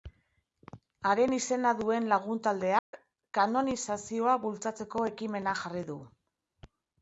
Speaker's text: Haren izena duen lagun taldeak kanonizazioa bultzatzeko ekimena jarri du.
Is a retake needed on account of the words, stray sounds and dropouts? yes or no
yes